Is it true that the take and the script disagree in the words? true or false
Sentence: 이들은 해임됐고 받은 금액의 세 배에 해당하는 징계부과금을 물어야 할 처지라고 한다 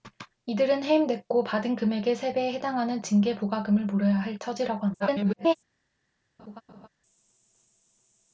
true